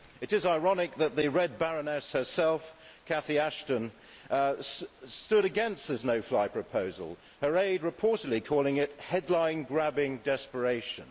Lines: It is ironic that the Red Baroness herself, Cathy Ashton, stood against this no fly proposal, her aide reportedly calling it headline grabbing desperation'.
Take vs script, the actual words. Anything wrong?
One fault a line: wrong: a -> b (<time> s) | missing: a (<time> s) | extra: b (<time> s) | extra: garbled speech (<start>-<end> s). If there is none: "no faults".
no faults